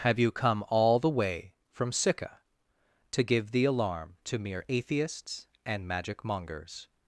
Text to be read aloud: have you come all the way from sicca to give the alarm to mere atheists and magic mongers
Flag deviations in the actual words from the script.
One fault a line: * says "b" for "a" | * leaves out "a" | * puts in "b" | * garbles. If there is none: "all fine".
all fine